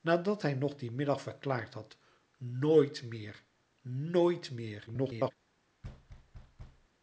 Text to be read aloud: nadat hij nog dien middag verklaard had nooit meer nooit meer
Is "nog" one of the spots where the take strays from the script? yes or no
no